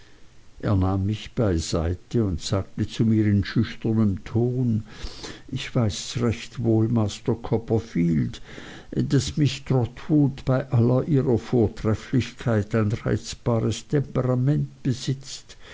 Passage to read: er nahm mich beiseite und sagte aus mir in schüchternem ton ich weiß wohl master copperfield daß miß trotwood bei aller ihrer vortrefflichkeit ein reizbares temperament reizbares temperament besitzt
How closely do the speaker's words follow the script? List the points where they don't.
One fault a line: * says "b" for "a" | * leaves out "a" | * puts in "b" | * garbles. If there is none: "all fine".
* says "zu" for "aus"
* puts in "recht"
* leaves out "reizbares temperament"